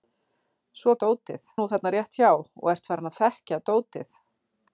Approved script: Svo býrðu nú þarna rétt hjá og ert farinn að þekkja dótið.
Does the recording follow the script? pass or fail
fail